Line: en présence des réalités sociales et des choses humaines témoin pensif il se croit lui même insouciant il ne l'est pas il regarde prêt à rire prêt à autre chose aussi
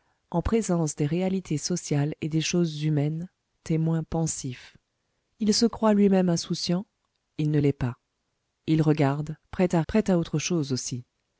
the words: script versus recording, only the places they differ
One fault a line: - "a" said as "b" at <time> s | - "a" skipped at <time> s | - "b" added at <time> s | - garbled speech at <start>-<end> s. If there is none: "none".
- "rire" skipped at 9.8 s